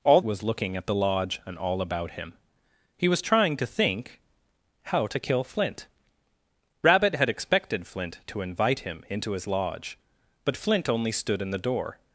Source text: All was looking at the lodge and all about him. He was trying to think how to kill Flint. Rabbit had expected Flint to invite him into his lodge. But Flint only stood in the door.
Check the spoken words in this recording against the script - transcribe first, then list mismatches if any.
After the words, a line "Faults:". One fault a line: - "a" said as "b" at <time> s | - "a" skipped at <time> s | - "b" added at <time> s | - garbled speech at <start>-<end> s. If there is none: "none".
All was looking at the lodge and all about him. He was trying to think how to kill Flint. Rabbit had expected Flint to invite him into his lodge. But Flint only stood in the door.
Faults:
none